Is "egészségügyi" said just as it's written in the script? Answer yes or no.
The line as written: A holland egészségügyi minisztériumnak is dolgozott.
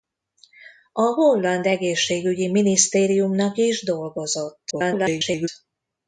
yes